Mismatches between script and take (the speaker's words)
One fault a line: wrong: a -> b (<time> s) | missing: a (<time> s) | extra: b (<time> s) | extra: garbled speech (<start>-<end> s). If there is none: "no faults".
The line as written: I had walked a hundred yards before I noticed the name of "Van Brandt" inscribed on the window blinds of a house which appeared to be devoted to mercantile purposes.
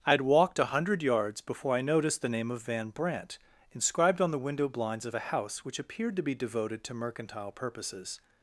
no faults